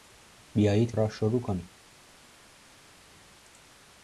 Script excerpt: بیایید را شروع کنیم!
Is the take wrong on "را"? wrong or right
right